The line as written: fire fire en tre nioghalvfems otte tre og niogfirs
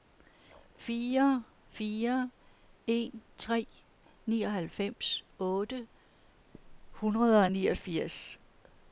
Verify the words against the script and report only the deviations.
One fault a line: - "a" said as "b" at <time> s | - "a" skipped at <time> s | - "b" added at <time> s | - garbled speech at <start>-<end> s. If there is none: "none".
- "tre" said as "hundrede" at 6.9 s